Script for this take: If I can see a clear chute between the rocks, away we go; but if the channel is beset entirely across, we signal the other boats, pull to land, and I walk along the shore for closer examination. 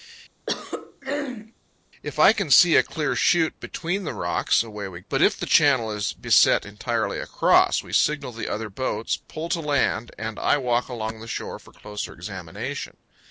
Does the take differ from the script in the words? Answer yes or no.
yes